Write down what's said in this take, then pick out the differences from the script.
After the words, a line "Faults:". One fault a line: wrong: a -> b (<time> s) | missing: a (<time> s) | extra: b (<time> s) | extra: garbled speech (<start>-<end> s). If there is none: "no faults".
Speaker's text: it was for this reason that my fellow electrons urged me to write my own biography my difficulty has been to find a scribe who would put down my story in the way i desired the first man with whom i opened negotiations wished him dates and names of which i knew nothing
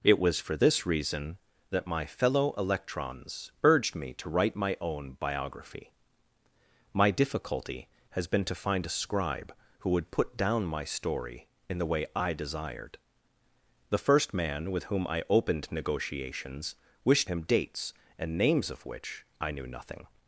it was for this reason that my fellow electrons urged me to write my own biography my difficulty has been to find a scribe who would put down my story in the way i desired the first man with whom i opened negotiations wished him dates and names of which i knew nothing
Faults:
no faults